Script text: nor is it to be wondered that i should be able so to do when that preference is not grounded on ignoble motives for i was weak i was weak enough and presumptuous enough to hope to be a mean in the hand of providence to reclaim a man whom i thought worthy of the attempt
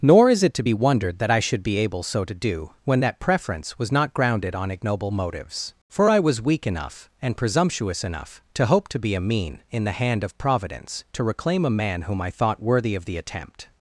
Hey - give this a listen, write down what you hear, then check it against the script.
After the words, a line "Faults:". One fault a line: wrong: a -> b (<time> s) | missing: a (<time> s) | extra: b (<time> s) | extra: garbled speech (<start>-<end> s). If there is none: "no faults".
nor is it to be wondered that i should be able so to do when that preference was not grounded on ignoble motives for i was weak enough and presumptuous enough to hope to be a mean in the hand of providence to reclaim a man whom i thought worthy of the attempt
Faults:
wrong: is -> was (3.8 s)
missing: i was weak (6.6 s)